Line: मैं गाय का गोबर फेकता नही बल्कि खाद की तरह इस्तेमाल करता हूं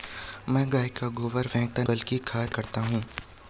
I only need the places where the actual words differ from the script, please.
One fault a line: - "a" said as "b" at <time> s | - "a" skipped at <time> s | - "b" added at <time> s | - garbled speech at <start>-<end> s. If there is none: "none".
- "नही" skipped at 1.8 s
- "की तरह इस्तेमाल" skipped at 2.5 s